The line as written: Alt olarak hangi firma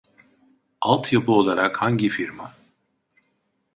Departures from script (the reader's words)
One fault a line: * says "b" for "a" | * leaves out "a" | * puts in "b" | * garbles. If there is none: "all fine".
* puts in "yapı"